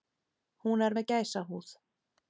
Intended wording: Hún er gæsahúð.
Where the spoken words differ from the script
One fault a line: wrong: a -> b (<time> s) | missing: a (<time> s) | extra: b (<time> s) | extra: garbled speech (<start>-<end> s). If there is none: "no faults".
extra: með (1.0 s)